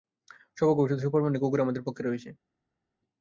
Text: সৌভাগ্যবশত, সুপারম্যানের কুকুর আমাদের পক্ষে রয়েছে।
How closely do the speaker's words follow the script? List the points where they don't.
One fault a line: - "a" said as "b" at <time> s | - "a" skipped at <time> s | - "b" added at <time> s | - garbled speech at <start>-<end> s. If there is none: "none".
none